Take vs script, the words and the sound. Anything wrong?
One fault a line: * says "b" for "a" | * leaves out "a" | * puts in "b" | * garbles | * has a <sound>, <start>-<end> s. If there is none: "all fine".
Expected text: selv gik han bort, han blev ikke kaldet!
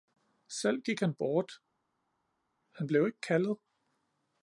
all fine